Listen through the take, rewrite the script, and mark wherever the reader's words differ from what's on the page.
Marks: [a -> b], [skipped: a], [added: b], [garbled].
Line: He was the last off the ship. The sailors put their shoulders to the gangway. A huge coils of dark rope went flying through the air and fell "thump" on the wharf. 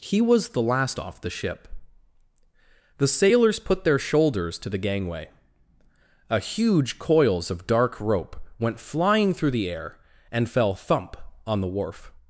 He was the last off the ship. The sailors put their shoulders to the gangway. A huge coils of dark rope went flying through the air and fell "thump" on the wharf.